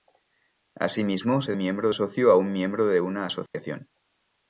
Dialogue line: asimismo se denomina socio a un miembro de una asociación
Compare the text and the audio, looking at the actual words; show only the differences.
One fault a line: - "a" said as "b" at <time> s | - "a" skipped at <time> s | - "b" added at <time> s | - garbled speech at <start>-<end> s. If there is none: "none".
- "denomina" said as "miembro" at 1.6 s